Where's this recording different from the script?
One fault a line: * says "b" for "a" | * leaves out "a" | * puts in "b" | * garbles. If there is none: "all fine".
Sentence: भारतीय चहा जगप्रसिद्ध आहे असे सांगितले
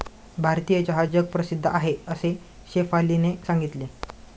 * puts in "शेफालीने"